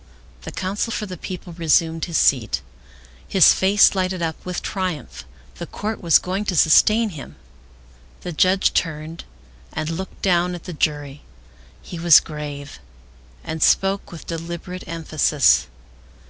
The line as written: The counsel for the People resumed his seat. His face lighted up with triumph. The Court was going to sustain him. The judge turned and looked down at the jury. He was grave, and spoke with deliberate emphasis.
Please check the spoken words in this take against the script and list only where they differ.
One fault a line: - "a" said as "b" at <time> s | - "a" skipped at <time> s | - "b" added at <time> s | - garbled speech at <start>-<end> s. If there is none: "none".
none